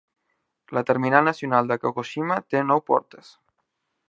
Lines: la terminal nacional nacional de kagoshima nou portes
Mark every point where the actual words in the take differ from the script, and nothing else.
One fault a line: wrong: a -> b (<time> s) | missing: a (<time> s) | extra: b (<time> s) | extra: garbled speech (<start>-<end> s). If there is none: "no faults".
missing: nacional (1.7 s)
extra: té (2.5 s)